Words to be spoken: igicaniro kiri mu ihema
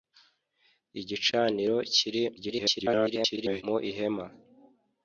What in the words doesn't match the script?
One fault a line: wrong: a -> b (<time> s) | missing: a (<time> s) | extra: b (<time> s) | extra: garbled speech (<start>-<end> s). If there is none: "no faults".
extra: garbled speech (2.4-3.6 s)